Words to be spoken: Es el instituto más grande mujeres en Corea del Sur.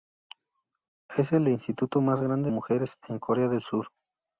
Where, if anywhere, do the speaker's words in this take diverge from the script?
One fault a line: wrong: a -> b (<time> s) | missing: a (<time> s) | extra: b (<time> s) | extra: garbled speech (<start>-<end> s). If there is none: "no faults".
no faults